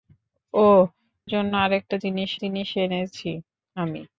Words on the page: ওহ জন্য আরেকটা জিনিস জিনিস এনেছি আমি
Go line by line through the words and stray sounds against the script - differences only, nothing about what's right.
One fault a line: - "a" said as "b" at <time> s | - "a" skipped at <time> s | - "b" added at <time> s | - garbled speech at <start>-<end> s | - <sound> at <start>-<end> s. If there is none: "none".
none